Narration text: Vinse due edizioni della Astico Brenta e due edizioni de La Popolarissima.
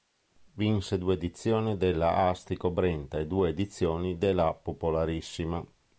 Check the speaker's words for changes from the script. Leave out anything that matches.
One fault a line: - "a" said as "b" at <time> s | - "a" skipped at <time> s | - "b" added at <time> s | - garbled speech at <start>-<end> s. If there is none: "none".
none